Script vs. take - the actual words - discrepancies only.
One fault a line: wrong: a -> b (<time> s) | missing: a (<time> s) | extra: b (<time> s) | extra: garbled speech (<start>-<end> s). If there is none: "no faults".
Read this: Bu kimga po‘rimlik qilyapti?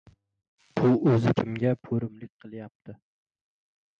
extra: o‘zi (1.1 s)